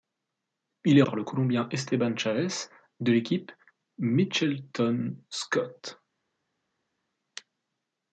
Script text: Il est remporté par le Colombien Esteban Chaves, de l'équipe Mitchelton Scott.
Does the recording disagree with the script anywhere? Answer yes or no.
yes